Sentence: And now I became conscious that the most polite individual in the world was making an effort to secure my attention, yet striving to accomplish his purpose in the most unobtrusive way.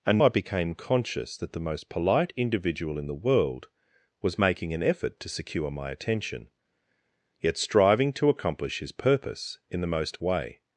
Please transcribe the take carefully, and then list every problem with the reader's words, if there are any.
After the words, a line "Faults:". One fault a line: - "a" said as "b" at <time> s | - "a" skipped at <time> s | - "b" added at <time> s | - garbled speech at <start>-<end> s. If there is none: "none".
And I became conscious that the most polite individual in the world was making an effort to secure my attention, yet striving to accomplish his purpose in the most way.
Faults:
- "now" skipped at 0.2 s
- "unobtrusive" skipped at 10.2 s